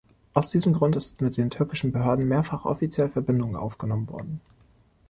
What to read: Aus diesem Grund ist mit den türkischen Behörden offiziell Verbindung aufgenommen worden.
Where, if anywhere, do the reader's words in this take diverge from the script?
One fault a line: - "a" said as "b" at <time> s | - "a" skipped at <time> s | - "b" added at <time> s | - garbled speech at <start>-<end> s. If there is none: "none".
- "mehrfach" added at 2.3 s